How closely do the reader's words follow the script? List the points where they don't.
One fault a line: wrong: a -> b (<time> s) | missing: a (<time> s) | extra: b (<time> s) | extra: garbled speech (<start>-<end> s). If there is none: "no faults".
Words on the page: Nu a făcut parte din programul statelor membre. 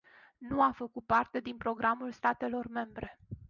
no faults